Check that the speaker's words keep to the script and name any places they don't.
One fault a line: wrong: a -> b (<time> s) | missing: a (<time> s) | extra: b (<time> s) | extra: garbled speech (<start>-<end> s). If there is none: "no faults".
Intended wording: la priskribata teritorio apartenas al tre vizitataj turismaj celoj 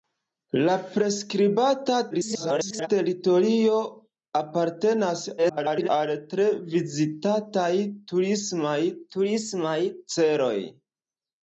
extra: garbled speech (2.1-2.9 s)
extra: garbled speech (5.4-5.9 s)
extra: turismaj (9.2 s)